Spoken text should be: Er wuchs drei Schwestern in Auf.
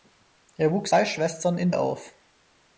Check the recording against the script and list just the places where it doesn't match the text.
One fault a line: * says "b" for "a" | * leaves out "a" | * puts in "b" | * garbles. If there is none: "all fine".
all fine